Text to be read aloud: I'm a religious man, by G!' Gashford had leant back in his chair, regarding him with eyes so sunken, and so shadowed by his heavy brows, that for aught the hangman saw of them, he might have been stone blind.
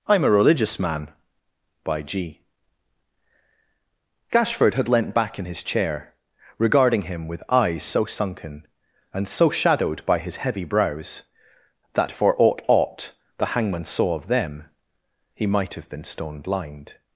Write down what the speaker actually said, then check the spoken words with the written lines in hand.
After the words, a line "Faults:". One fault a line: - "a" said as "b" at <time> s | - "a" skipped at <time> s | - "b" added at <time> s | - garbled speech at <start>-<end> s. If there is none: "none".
I'm a religious man, by G!' Gashford had leant back in his chair, regarding him with eyes so sunken, and so shadowed by his heavy brows, that for aught aught the hangman saw of them, he might have been stone blind.
Faults:
- "aught" added at 12.7 s